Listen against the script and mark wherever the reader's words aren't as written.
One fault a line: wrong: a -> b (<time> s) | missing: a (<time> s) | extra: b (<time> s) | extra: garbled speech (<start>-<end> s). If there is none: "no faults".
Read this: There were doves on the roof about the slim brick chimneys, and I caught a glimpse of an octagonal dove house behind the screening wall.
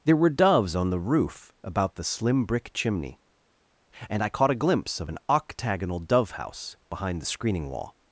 wrong: chimneys -> chimney (2.7 s)